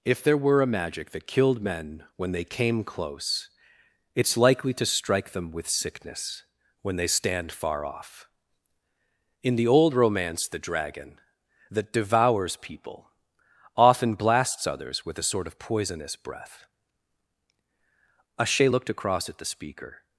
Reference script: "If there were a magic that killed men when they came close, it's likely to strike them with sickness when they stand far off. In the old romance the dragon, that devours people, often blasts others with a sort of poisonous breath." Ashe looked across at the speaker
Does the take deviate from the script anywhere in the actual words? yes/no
no